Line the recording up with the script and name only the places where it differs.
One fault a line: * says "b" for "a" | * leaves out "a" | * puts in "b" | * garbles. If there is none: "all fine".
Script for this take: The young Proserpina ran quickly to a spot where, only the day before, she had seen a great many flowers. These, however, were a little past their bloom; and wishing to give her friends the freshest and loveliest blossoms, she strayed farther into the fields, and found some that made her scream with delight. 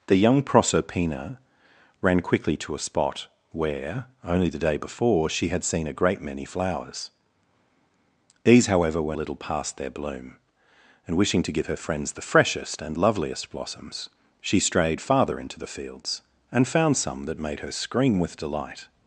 all fine